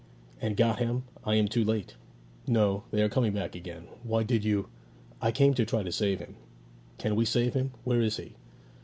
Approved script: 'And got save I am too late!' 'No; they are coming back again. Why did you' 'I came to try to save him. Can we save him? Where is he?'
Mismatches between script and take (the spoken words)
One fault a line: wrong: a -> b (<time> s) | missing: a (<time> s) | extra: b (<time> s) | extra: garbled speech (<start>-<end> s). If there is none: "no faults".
wrong: save -> him (0.8 s)